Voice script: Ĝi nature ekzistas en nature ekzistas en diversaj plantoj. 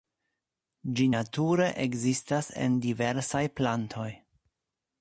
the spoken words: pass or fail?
fail